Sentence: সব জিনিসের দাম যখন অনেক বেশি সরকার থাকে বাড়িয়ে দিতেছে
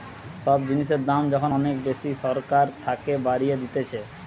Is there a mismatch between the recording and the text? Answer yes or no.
no